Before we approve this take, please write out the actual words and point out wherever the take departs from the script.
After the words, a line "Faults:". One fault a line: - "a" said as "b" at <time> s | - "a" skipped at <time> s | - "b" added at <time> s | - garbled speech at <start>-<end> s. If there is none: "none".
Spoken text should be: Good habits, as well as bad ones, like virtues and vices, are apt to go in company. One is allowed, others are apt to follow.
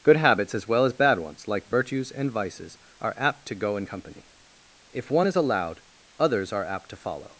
Good habits, as well as bad ones, like virtues and vices, are apt to go in company. If one is allowed, others are apt to follow.
Faults:
- "If" added at 4.9 s